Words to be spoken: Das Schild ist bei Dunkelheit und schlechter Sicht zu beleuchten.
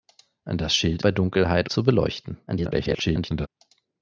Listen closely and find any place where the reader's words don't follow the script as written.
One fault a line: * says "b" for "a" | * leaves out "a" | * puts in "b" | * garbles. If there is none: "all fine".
* leaves out "ist"
* leaves out "und schlechter Sicht"
* garbles